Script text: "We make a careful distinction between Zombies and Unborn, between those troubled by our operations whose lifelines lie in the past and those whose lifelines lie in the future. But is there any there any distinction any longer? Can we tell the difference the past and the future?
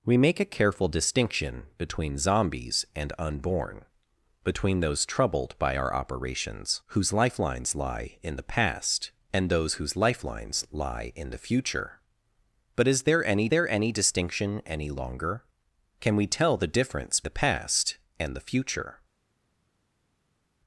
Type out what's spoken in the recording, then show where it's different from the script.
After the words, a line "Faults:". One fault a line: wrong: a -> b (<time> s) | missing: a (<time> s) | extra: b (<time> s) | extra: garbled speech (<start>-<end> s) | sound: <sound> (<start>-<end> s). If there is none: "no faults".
"We make a careful distinction between Zombies and Unborn, between those troubled by our operations whose lifelines lie in the past and those whose lifelines lie in the future. But is there any there any distinction any longer? Can we tell the difference the past and the future?
Faults:
no faults